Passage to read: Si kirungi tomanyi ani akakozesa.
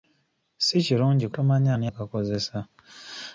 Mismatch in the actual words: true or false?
false